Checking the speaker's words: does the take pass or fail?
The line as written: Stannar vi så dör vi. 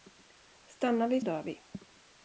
fail